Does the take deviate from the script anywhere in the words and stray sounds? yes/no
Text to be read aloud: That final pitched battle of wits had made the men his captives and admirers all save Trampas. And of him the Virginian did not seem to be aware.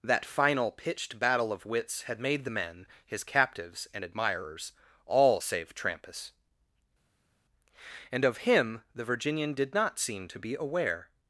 no